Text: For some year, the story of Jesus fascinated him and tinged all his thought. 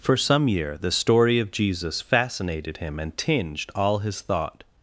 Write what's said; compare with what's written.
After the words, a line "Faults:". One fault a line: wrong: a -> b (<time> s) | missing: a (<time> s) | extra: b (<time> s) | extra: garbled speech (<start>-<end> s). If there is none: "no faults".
For some year, the story of Jesus fascinated him and tinged all his thought.
Faults:
no faults